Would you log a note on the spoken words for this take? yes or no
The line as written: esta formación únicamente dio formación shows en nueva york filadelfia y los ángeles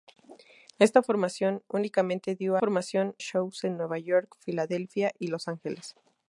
no